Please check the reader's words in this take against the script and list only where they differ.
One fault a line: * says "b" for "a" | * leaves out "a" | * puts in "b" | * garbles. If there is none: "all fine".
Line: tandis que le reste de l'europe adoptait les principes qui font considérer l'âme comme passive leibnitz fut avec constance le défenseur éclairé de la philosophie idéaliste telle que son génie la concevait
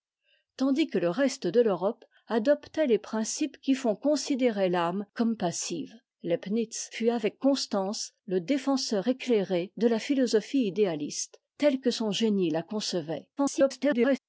* garbles